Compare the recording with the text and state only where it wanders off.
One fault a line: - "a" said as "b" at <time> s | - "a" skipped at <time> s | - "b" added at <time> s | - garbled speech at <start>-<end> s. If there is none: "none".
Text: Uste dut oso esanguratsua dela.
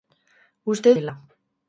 - "dut oso esanguratsua" skipped at 0.9 s